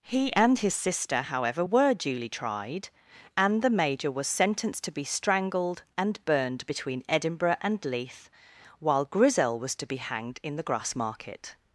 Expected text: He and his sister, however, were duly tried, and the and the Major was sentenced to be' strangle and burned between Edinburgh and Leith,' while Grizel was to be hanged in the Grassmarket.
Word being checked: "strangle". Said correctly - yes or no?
no